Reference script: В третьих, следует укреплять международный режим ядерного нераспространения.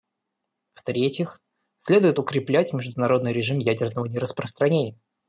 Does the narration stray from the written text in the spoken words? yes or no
no